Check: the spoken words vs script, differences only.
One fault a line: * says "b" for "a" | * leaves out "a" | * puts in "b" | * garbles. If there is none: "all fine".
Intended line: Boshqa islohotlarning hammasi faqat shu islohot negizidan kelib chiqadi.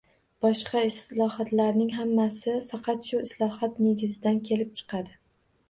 all fine